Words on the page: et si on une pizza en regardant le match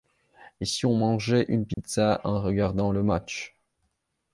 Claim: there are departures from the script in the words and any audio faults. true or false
true